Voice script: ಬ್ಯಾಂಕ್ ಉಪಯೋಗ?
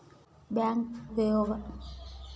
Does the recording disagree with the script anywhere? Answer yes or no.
no